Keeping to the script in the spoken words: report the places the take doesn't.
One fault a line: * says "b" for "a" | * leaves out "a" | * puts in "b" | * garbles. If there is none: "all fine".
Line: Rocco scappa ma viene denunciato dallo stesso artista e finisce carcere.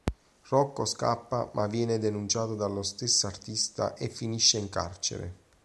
* puts in "in"